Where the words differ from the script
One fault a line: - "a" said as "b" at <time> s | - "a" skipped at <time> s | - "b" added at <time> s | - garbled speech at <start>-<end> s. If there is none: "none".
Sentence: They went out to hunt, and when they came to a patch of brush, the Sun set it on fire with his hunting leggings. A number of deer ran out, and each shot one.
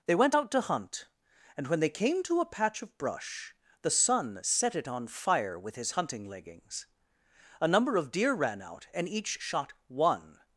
none